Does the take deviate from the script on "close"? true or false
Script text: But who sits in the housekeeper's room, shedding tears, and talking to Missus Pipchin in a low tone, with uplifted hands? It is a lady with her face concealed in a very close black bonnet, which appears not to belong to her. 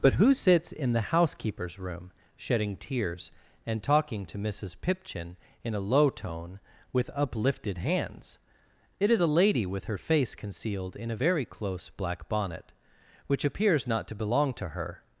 false